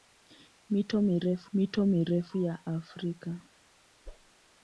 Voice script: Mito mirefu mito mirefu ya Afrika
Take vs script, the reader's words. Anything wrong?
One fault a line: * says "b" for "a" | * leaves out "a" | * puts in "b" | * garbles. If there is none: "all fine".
all fine